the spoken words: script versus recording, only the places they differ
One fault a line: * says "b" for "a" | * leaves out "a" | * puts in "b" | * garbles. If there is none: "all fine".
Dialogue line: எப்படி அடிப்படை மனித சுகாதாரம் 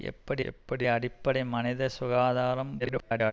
* puts in "எப்படி"
* garbles